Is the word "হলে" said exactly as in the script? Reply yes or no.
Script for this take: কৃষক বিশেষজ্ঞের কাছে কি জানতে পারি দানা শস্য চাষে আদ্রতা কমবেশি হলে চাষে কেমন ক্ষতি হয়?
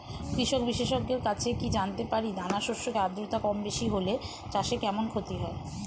yes